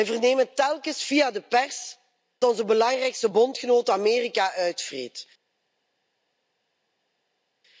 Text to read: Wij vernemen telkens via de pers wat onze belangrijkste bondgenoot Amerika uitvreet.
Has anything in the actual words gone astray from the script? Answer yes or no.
yes